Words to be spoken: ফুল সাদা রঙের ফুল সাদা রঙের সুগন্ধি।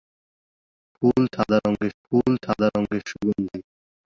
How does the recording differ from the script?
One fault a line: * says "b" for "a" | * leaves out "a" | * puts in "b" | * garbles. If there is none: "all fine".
all fine